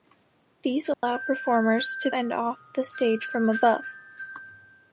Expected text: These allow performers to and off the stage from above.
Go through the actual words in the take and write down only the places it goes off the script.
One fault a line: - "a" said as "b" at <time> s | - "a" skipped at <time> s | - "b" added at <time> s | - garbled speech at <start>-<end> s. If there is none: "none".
none